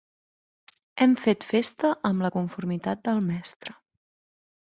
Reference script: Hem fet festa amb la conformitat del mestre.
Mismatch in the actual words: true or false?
false